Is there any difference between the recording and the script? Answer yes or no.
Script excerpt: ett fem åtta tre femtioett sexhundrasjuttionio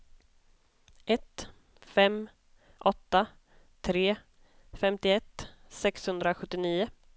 no